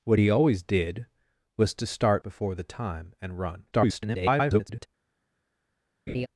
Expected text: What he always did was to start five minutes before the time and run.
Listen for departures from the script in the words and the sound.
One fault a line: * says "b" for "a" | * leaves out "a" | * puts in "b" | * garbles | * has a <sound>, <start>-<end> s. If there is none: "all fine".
* leaves out "five minutes"
* garbles
* has a laugh, 6.1-6.3 s